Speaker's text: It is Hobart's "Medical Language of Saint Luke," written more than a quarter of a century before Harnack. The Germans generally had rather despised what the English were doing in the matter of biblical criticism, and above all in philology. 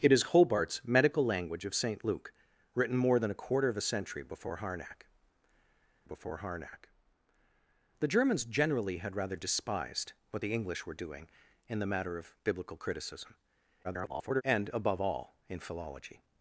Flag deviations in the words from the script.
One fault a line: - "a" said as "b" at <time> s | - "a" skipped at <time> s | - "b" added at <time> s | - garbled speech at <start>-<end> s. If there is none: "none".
- "before Harnack" added at 6.0 s
- garbled speech at 13.8-14.4 s